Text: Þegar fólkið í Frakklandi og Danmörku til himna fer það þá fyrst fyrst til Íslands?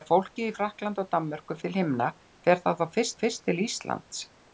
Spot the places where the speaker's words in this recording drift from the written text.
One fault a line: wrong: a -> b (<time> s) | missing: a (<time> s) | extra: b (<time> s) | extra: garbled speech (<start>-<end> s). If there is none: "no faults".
no faults